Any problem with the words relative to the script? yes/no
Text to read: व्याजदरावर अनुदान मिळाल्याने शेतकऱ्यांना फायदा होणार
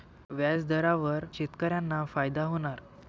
yes